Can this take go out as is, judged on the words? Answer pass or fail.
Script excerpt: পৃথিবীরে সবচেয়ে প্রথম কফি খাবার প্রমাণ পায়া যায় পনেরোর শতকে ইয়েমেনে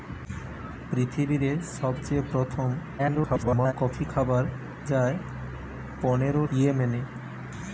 fail